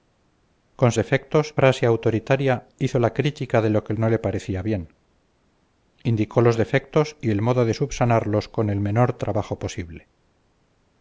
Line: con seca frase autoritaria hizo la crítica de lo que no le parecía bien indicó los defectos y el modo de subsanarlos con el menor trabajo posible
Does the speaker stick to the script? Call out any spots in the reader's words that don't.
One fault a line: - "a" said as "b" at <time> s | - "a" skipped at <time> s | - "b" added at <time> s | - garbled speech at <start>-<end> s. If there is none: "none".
- "seca" said as "defectos" at 0.9 s